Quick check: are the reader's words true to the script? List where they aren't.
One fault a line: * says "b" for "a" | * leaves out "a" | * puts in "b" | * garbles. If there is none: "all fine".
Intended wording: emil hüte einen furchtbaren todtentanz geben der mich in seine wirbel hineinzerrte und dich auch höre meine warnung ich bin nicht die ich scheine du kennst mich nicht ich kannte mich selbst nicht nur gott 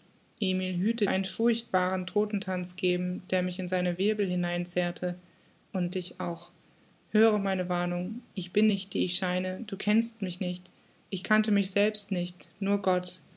all fine